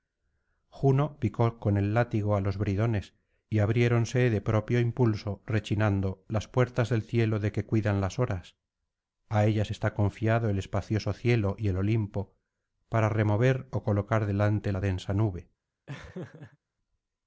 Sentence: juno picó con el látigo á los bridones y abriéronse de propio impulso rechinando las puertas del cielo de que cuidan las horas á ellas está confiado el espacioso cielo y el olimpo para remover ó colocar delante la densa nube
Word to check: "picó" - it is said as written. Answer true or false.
true